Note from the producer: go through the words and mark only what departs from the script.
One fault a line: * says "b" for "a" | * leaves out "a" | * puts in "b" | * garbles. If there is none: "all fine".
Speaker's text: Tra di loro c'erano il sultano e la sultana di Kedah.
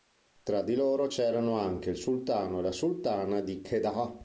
* puts in "anche"